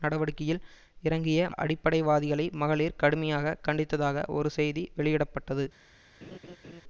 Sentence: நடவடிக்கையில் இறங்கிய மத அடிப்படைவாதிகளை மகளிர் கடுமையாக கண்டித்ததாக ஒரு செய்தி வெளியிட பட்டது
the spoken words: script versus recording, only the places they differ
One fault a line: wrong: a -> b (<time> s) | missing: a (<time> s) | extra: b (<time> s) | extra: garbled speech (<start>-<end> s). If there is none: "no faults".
missing: மத (1.5 s)